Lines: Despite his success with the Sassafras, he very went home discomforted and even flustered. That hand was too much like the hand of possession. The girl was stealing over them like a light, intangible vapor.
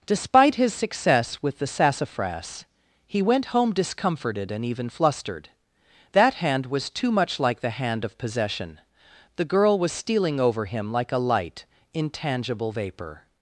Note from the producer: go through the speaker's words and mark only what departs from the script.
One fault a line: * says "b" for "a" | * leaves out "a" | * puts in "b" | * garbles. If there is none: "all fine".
* leaves out "very"
* says "him" for "them"